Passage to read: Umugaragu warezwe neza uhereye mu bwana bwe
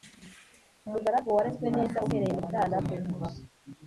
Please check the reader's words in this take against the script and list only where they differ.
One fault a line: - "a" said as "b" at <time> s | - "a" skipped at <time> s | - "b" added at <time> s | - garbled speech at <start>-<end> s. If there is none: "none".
none